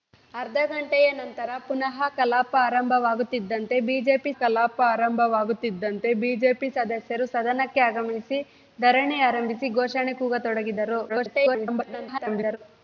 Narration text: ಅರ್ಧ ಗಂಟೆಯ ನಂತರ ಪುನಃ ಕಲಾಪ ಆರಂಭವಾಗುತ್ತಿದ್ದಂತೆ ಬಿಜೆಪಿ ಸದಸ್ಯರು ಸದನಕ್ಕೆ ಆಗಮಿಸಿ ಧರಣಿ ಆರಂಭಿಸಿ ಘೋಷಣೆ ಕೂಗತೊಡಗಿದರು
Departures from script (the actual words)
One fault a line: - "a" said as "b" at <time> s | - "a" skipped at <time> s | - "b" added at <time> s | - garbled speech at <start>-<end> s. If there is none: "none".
- "ಕಲಾಪ ಆರಂಭವಾಗುತ್ತಿದ್ದಂತೆ ಬಿಜೆಪಿ" added at 4.4 s
- garbled speech at 11.1-12.6 s